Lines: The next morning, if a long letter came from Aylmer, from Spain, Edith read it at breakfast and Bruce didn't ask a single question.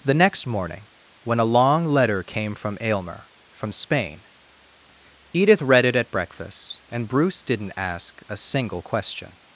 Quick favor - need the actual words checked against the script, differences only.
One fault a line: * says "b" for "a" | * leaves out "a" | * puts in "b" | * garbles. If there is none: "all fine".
* says "when" for "if"